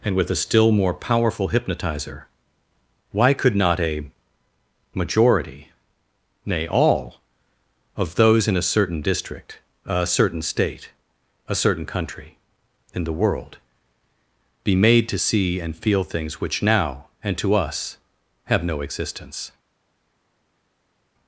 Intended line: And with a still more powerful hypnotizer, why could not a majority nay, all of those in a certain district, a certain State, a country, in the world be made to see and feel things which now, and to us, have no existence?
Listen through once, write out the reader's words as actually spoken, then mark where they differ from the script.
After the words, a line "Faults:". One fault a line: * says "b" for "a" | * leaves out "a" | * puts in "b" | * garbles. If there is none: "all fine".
And with a still more powerful hypnotizer, why could not a majority nay, all of those in a certain district, a certain State, a certain country, in the world be made to see and feel things which now, and to us, have no existence?
Faults:
* puts in "certain"